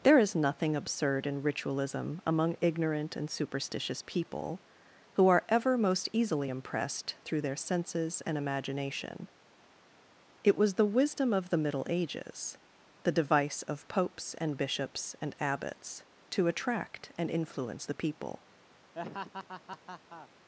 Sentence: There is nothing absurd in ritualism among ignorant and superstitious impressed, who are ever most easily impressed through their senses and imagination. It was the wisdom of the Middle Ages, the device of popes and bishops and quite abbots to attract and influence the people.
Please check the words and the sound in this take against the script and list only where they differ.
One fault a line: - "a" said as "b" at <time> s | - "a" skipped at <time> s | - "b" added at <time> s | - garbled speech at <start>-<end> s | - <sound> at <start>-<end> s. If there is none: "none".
- "impressed" said as "people" at 4.0 s
- "quite" skipped at 15.3 s
- laugh at 18.9-20.3 s